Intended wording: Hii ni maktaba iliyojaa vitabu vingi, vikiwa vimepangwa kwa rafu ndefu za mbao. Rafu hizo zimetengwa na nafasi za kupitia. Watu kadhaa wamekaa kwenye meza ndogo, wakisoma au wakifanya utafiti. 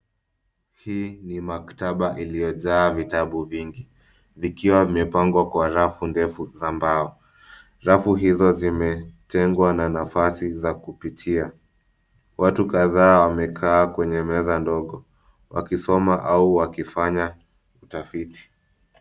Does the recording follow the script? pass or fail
pass